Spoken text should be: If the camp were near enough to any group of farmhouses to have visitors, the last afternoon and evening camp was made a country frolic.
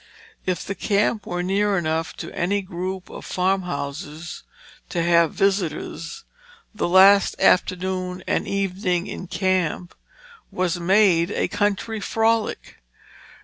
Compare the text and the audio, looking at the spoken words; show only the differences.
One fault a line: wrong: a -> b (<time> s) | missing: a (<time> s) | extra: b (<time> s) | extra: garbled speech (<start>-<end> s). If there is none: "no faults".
extra: in (9.1 s)